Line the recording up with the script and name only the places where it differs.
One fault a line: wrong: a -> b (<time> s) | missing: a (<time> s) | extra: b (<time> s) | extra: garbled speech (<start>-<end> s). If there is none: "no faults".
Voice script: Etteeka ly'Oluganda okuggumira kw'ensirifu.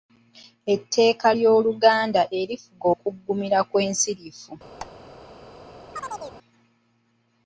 extra: erifuga (2.4 s)